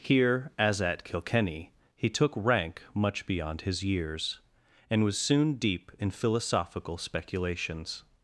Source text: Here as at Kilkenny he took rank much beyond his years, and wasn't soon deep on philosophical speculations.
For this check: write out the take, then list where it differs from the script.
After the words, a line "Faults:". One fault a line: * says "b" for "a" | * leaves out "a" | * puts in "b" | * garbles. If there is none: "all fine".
Here as at Kilkenny he took rank much beyond his years, and was soon deep in philosophical speculations.
Faults:
* says "was" for "wasn't"
* says "in" for "on"